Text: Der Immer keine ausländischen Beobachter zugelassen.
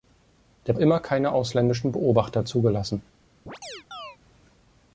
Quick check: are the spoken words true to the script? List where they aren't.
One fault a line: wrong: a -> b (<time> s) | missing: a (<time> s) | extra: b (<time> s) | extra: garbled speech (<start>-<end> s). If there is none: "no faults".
no faults